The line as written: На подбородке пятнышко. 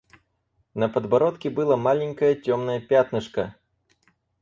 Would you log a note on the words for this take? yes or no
yes